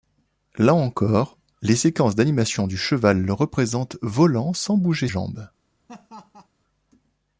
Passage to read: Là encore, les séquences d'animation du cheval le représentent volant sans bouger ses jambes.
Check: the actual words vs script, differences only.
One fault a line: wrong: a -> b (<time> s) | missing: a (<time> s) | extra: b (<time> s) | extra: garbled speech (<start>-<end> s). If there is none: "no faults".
missing: ses (5.1 s)